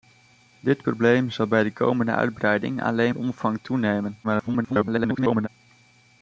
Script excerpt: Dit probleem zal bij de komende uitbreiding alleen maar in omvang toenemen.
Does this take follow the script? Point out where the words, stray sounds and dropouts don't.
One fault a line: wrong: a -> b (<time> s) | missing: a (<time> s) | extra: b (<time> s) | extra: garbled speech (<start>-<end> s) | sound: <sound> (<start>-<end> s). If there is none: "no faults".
missing: maar (3.1 s)
extra: garbled speech (4.2-5.5 s)